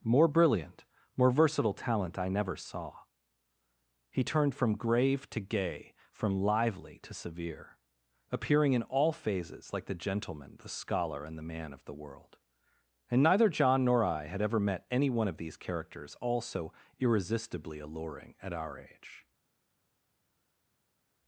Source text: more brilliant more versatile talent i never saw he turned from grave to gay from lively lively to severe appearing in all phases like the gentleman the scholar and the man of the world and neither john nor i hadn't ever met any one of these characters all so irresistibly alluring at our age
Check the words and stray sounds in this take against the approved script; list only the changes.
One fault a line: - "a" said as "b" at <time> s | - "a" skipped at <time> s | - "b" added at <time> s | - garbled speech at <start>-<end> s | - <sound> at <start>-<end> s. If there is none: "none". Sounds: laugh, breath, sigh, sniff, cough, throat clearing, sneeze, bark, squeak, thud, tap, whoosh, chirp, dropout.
- "lively" skipped at 7.0 s
- "hadn't" said as "had" at 14.3 s